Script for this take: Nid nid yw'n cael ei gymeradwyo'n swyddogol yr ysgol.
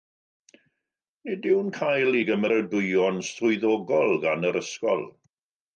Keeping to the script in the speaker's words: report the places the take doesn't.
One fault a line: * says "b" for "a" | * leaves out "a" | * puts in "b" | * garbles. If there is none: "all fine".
* leaves out "nid"
* puts in "gan"